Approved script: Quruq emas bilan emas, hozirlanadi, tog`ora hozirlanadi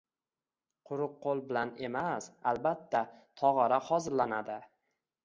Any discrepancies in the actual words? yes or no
yes